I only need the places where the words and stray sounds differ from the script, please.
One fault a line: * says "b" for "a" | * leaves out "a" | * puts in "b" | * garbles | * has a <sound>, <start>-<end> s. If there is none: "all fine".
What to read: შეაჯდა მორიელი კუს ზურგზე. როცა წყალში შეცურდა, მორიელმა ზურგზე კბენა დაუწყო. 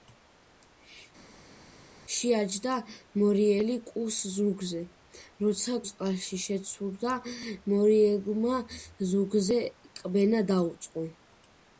all fine